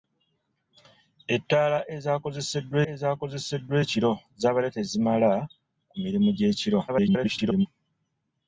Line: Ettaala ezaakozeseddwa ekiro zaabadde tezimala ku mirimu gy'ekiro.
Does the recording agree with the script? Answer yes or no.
no